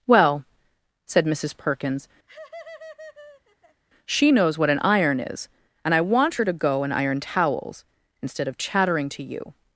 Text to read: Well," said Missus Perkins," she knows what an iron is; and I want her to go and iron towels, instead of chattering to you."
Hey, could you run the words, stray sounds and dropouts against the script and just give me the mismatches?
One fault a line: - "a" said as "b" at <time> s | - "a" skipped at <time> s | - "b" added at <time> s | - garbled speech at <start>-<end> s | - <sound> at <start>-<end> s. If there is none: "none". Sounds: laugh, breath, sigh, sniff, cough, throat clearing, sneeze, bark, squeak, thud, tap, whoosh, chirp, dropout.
- laugh at 2.3-3.8 s